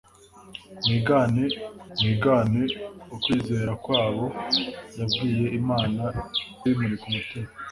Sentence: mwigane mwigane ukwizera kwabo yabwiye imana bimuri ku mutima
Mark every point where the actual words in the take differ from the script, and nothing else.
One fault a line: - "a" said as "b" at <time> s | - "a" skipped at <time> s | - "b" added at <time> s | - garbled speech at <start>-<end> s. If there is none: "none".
none